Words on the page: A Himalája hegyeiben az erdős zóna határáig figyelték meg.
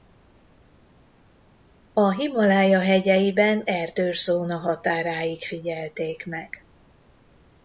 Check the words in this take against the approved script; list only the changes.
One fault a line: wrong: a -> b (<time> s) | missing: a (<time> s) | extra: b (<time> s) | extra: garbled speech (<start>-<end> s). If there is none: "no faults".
missing: az (3.6 s)